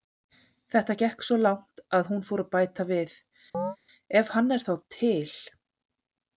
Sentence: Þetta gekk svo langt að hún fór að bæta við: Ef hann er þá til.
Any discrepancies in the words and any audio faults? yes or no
yes